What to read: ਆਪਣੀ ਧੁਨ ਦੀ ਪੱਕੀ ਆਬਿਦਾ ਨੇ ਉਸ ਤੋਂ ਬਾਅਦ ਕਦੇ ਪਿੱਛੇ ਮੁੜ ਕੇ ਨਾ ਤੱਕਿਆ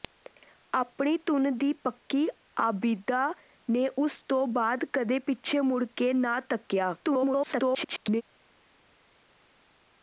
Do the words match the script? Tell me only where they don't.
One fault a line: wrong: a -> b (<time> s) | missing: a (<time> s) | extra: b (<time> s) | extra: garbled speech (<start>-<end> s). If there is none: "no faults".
extra: garbled speech (7.0-8.2 s)